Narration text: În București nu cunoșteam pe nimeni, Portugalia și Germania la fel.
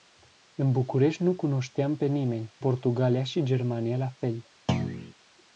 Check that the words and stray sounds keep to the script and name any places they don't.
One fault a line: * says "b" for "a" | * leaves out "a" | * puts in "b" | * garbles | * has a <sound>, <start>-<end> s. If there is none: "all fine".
* has a thud, 4.7-5.1 s